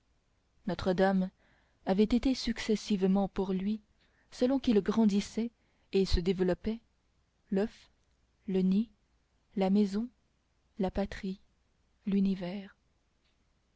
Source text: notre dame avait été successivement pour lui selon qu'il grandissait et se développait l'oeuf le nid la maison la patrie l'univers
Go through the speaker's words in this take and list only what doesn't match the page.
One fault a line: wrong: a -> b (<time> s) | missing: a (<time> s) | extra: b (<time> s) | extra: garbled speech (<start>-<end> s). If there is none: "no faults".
no faults